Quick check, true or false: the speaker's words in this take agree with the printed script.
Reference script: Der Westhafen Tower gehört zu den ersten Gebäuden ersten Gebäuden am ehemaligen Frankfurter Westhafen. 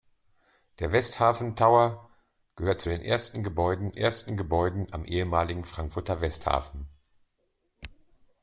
true